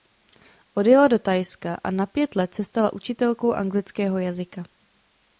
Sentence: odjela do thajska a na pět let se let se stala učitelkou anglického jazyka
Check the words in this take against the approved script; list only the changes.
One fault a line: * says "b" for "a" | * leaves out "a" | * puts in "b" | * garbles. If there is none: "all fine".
* leaves out "let se"